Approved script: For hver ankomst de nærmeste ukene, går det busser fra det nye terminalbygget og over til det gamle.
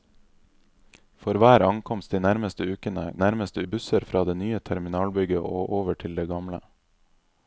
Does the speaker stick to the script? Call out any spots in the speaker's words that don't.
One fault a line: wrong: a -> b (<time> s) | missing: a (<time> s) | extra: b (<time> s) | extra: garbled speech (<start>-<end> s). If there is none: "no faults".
wrong: går -> nærmeste (3.2 s)